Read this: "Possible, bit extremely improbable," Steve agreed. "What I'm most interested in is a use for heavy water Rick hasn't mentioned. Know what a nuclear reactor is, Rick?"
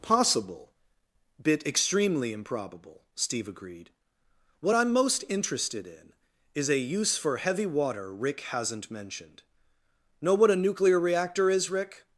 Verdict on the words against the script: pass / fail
pass